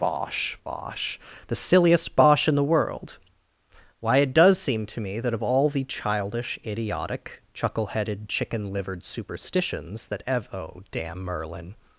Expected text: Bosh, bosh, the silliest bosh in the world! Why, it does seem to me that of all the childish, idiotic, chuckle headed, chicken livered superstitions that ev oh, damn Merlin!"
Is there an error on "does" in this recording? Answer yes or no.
no